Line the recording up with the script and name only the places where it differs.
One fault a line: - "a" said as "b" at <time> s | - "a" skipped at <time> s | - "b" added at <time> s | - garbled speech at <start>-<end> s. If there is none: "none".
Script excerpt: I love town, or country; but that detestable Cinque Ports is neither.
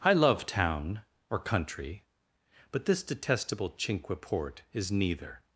- "that" said as "this" at 2.8 s
- "Ports" said as "Port" at 4.2 s